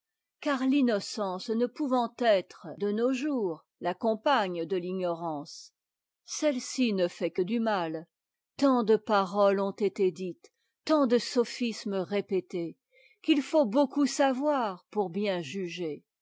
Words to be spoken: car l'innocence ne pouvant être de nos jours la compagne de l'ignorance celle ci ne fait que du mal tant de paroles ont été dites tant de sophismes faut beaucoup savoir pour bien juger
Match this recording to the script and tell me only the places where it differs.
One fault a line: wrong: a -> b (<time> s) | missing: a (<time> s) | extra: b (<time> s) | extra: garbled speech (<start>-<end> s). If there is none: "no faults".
extra: répétés qu'il (12.0 s)